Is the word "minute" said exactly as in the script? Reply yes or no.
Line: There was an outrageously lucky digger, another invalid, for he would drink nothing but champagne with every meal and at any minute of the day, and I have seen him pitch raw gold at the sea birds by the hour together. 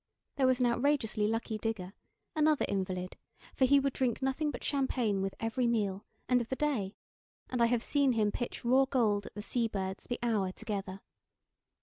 no